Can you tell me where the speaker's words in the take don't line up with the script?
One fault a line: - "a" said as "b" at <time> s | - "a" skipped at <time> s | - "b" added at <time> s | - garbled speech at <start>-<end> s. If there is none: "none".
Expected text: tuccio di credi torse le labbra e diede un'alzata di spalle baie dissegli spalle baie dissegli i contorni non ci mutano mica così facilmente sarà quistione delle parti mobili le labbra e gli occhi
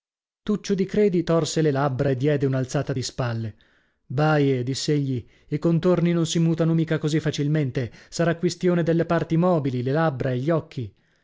- "spalle baie dissegli" skipped at 5.2 s
- "ci" said as "si" at 6.2 s